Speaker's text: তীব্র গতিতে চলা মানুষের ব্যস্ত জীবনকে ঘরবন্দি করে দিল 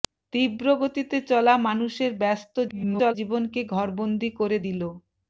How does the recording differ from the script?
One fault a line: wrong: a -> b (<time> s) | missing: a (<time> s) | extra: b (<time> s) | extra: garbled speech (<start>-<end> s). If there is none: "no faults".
extra: garbled speech (2.7-3.1 s)